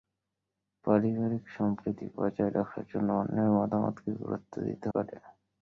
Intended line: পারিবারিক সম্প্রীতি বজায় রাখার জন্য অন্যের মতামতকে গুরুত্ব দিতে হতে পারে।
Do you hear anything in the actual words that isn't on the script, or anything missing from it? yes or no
yes